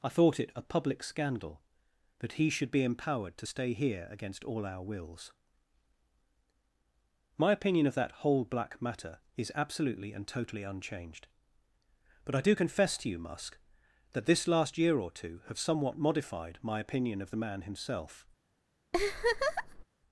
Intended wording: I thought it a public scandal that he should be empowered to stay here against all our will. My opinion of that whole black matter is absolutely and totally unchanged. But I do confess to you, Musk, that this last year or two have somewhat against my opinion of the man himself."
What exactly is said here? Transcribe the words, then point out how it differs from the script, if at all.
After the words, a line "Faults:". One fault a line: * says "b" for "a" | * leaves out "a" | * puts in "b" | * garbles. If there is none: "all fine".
I thought it a public scandal that he should be empowered to stay here against all our wills. My opinion of that whole black matter is absolutely and totally unchanged. But I do confess to you, Musk, that this last year or two have somewhat modified my opinion of the man himself."
Faults:
* says "wills" for "will"
* says "modified" for "against"